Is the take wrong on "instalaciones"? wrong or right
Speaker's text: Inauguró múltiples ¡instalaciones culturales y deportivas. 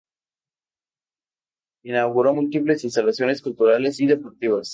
right